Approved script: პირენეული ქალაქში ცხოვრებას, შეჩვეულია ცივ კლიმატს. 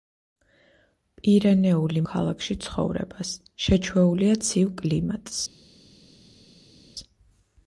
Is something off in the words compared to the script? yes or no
no